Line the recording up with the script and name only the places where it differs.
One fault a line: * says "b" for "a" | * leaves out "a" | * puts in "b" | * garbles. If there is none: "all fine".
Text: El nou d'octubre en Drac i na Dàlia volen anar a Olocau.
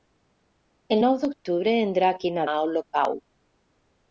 * leaves out "Dàlia volen anar"